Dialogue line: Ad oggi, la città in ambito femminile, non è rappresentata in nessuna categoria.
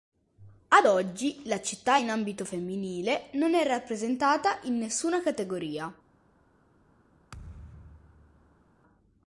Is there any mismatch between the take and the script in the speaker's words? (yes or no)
no